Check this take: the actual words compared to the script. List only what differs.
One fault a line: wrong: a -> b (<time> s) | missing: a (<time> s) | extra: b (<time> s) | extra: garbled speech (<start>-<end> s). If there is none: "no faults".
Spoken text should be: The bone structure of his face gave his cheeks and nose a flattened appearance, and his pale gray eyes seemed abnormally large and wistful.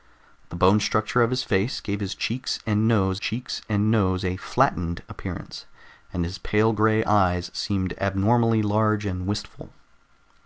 extra: cheeks and nose (3.2 s)